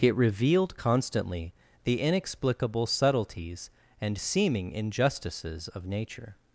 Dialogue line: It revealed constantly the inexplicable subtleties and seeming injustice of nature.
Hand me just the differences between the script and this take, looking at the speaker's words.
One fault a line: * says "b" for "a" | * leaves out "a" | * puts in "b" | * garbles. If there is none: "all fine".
* says "injustices" for "injustice"